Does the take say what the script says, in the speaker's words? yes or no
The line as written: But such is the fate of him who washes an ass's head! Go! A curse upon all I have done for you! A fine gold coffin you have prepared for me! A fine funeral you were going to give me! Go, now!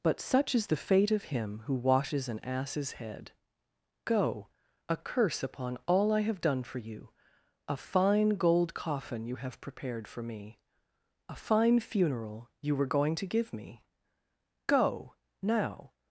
yes